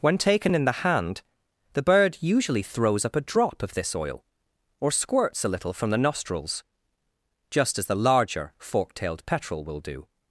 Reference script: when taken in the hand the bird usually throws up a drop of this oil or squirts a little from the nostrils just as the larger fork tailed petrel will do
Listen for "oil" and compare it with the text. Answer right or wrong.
right